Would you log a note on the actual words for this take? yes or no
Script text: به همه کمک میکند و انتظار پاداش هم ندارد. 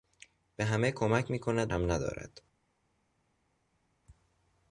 yes